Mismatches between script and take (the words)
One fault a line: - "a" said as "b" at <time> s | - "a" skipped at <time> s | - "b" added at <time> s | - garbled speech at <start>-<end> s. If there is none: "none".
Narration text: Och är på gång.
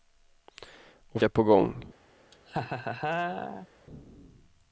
none